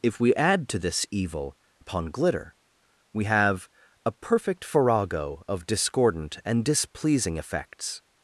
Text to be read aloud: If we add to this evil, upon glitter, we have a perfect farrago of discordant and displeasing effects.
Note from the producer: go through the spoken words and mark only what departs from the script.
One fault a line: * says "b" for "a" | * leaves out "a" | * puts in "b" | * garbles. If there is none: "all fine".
all fine